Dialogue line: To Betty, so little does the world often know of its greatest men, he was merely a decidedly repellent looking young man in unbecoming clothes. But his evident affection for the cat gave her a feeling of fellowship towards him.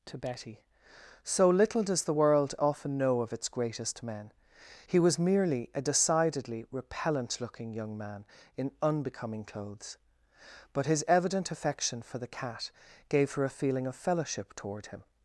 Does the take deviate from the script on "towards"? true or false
true